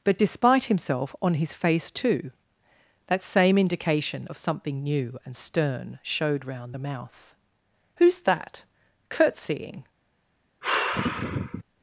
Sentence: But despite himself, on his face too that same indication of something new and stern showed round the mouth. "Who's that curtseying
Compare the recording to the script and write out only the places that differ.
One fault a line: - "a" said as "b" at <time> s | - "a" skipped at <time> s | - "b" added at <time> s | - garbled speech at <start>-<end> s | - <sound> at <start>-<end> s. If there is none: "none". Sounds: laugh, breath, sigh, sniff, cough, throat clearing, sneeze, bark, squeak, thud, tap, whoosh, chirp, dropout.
- sigh at 10.6-11.6 s